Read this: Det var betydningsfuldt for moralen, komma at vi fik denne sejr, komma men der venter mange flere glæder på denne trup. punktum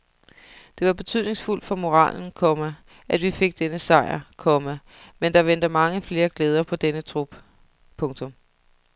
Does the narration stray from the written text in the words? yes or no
no